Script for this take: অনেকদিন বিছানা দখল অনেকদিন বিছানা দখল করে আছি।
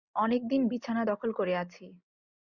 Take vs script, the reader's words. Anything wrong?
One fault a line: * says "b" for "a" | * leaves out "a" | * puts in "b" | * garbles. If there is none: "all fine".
* leaves out "অনেকদিন বিছানা দখল"